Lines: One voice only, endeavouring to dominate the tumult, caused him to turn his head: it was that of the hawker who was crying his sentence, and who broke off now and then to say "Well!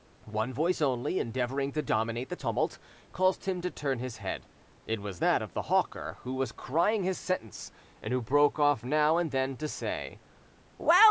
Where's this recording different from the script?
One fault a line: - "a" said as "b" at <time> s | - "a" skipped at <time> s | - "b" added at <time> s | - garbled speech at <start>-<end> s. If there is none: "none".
none